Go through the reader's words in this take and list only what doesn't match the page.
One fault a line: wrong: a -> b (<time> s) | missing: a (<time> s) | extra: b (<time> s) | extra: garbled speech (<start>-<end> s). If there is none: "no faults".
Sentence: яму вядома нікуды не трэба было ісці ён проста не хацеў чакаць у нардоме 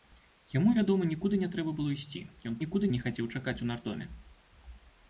wrong: проста -> нікуды (2.6 s)